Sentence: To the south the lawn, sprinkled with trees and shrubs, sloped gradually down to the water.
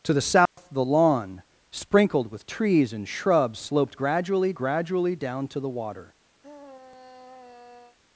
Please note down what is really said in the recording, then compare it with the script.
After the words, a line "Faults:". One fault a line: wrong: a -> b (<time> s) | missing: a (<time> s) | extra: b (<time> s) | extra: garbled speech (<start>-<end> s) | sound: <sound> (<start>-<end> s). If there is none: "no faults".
To the south the lawn, sprinkled with trees and shrubs, sloped gradually gradually down to the water.
Faults:
sound: dropout (0.5-0.6 s)
extra: gradually (4.5 s)
sound: sigh (6.4-8.0 s)